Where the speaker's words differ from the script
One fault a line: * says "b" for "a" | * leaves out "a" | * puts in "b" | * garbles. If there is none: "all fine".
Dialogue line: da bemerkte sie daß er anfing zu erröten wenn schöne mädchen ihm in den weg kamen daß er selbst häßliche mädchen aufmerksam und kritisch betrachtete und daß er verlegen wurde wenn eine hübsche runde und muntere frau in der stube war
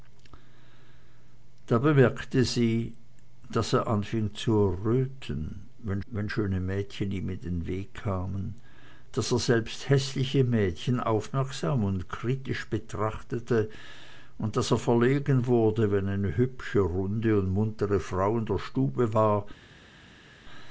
* puts in "wenn"